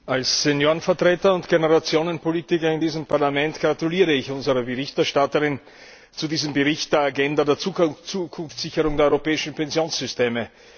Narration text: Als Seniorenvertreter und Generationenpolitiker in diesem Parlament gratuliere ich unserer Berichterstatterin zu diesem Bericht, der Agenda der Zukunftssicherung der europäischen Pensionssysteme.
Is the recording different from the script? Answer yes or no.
no